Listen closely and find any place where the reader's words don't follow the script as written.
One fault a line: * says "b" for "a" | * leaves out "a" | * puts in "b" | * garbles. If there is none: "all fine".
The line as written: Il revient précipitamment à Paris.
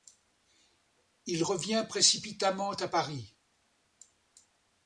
all fine